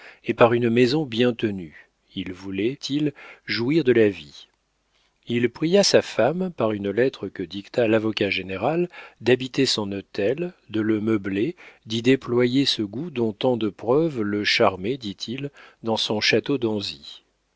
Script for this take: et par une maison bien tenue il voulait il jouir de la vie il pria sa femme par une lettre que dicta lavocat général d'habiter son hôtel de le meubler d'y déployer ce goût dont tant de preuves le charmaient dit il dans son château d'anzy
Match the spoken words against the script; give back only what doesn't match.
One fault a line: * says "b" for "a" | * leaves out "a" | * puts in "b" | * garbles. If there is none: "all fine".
all fine